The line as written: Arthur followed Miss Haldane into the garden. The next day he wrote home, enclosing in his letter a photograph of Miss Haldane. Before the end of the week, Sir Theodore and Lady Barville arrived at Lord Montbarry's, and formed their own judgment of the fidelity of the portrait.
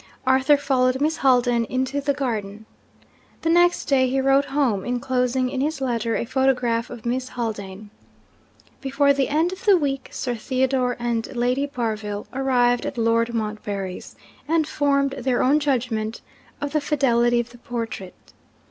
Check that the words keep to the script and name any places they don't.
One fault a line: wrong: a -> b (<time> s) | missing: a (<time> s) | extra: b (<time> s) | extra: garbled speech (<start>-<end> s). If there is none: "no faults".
no faults